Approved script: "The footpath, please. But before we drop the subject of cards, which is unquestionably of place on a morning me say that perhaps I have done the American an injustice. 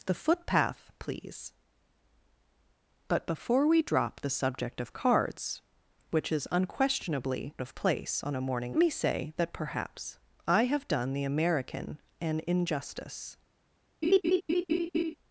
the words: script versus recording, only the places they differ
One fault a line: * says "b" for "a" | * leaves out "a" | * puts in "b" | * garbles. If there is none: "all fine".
all fine